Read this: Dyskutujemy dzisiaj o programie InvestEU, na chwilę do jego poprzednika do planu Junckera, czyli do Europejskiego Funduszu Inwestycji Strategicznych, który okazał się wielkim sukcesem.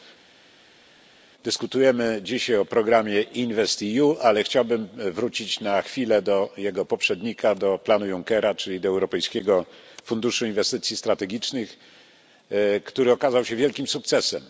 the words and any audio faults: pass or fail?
fail